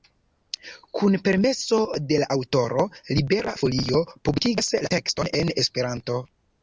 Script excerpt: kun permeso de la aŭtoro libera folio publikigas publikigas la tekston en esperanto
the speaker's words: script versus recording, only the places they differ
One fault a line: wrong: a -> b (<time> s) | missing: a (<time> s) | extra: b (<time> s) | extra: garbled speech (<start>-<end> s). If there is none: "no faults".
missing: publikigas (4.7 s)